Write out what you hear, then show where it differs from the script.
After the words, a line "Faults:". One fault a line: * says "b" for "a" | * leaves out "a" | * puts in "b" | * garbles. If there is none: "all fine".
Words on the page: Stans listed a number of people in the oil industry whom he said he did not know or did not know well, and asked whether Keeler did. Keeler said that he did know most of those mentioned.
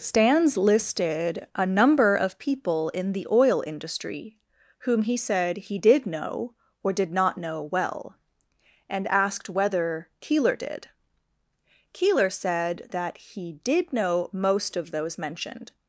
Stans listed a number of people in the oil industry whom he said he did know or did not know well, and asked whether Keeler did. Keeler said that he did know most of those mentioned.
Faults:
* leaves out "not"